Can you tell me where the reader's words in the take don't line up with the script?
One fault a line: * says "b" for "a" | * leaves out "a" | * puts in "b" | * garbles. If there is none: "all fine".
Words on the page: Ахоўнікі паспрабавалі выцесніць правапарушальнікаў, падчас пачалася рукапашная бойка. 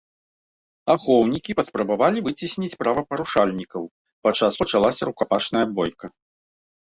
all fine